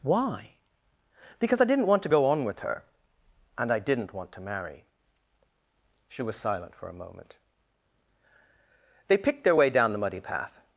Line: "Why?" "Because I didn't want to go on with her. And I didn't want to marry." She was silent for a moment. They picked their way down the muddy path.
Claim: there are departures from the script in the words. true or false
false